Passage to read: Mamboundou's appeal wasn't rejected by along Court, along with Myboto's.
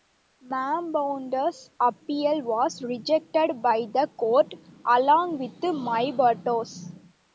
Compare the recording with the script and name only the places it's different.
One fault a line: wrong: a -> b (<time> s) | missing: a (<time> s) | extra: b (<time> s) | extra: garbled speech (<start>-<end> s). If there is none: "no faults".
wrong: wasn't -> was (2.4 s)
wrong: along -> the (3.9 s)